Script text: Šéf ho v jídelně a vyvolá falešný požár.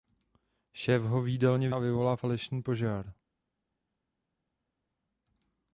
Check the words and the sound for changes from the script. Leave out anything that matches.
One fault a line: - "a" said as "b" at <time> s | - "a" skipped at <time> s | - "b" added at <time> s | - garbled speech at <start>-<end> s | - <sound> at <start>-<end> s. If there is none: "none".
none